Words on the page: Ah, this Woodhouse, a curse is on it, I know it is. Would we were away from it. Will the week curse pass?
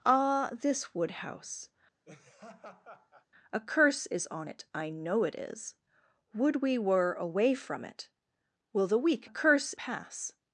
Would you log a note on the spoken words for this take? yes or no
no